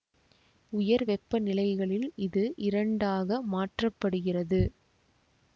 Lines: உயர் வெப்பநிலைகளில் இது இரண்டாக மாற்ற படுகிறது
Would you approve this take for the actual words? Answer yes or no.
yes